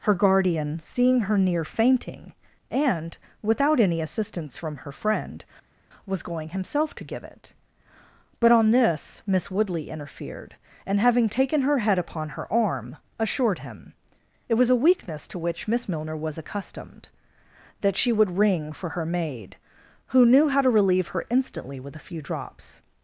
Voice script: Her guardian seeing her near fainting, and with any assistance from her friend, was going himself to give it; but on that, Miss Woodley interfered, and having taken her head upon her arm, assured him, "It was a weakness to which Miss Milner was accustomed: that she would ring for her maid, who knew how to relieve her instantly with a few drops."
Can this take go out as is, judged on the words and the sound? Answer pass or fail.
fail